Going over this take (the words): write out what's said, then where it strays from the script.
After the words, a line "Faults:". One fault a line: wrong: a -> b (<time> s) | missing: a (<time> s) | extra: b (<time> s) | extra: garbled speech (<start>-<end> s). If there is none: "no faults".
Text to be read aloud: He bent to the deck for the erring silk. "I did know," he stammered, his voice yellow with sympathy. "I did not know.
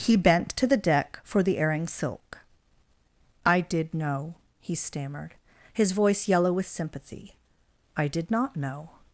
He bent to the deck for the erring silk. "I did know," he stammered, his voice yellow with sympathy. "I did not know.
Faults:
no faults